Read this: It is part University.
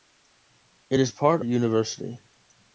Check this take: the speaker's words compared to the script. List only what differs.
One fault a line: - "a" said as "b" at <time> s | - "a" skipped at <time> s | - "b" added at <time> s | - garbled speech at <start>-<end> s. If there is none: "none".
none